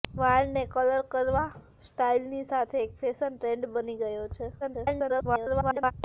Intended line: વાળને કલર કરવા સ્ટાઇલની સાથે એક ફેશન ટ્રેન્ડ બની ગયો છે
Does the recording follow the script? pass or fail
fail